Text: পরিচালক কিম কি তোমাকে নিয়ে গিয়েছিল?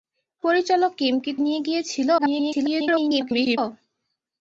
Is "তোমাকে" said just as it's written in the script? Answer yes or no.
no